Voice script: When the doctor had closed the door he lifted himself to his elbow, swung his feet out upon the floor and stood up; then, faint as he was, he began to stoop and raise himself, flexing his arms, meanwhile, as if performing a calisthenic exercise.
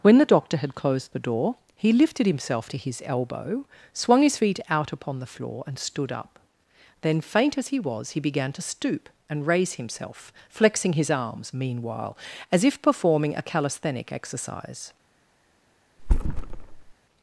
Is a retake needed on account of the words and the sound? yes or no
yes